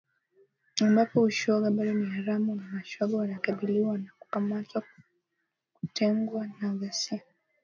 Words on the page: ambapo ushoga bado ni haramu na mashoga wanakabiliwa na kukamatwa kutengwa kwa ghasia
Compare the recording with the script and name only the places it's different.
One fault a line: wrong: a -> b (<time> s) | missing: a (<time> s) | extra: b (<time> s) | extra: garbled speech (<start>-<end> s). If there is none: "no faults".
wrong: kwa -> na (6.6 s)